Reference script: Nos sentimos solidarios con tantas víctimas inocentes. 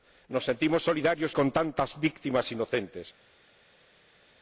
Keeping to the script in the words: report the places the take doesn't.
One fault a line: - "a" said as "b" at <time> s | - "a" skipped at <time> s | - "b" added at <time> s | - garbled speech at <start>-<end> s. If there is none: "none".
none